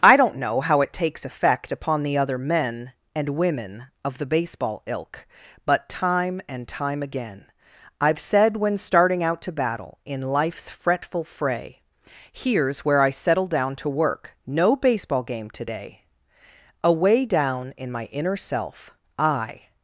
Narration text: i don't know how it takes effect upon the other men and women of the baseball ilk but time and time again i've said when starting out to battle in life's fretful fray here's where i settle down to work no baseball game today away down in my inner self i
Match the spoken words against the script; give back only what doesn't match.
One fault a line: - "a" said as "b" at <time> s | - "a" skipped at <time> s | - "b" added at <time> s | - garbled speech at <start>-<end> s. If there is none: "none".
none